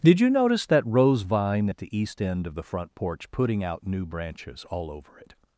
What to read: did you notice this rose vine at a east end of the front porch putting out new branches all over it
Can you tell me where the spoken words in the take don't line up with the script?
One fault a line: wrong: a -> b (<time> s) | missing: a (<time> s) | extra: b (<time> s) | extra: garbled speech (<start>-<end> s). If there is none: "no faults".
wrong: this -> that (0.7 s)
wrong: a -> the (1.8 s)